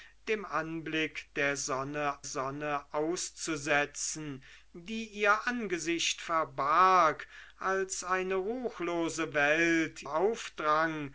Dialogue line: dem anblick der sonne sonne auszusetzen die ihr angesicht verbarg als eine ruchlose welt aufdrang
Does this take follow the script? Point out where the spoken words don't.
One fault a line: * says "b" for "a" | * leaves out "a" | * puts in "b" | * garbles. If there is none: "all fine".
all fine